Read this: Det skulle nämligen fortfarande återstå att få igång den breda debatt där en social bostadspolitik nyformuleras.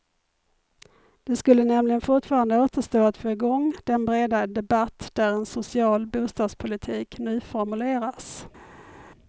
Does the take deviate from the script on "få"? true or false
false